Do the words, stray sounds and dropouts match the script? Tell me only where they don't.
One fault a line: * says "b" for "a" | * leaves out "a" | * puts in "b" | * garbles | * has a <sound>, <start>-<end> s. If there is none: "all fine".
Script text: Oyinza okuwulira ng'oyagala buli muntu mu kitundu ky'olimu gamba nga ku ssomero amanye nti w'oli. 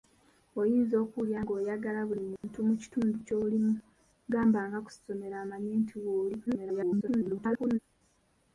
* has a dropout, 2.4-2.4 s
* garbles